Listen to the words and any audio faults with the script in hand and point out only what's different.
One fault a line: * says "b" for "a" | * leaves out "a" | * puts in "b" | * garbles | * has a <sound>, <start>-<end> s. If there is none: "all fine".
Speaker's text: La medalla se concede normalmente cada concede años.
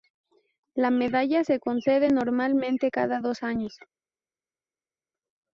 * says "dos" for "concede"